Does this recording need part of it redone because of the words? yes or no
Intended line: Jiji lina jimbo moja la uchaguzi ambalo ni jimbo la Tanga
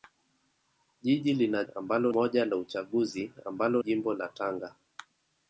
yes